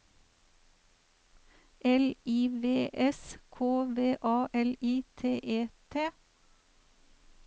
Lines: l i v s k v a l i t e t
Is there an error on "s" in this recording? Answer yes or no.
no